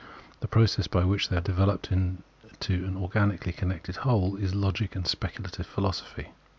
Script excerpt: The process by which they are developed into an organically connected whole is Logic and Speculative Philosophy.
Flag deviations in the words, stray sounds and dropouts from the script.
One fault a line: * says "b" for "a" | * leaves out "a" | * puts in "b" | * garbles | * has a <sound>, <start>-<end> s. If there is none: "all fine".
all fine